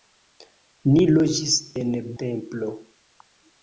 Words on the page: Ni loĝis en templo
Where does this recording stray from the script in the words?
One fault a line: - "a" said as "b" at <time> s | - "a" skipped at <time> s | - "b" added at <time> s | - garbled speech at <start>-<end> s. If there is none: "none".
none